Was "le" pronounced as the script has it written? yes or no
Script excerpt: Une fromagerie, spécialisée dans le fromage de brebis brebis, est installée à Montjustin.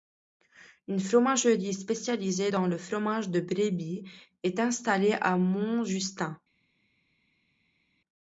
yes